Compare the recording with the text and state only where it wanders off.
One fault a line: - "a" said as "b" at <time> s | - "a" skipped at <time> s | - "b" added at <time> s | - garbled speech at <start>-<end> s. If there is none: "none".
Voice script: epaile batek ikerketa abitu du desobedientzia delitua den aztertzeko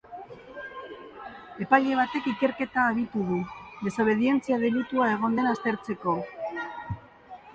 - "egon" added at 5.2 s